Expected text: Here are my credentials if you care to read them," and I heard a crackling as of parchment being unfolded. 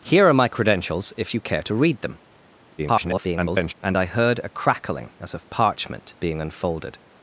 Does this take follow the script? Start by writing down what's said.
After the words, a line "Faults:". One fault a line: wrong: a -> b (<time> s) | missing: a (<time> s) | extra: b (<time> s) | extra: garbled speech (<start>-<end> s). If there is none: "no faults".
Here are my credentials if you care to read them," [garbled] and I heard a crackling as of parchment being unfolded.
Faults:
extra: garbled speech (2.8-3.7 s)